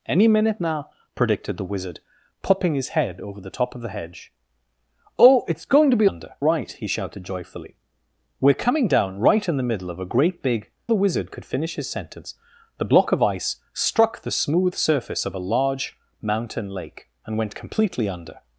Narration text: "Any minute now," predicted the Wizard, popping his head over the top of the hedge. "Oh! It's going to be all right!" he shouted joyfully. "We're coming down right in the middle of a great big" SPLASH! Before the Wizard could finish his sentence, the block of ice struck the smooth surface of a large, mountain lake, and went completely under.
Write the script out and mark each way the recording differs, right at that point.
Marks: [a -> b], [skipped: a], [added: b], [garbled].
"Any minute now," predicted the Wizard, popping his head over the top of the hedge. "Oh! It's going to be [all -> under] right!" he shouted joyfully. "We're coming down right in the middle of a great big" [skipped: SPLASH! Before] the Wizard could finish his sentence, the block of ice struck the smooth surface of a large, mountain lake, and went completely under.